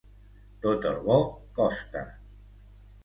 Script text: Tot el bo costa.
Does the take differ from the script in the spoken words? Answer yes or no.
no